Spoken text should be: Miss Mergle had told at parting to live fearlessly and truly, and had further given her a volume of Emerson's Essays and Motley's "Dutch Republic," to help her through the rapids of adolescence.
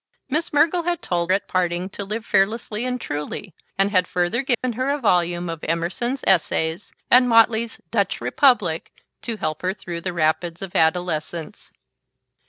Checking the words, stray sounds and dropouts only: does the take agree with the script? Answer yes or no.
no